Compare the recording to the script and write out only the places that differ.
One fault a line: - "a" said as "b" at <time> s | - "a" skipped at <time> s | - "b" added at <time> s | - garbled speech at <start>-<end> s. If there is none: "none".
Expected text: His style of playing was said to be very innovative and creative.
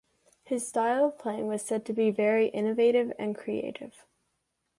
none